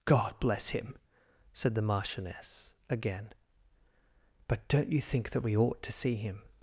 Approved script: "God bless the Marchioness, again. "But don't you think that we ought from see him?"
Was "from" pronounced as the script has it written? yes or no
no